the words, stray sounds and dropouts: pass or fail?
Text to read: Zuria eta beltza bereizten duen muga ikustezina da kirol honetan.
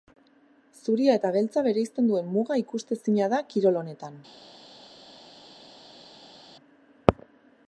pass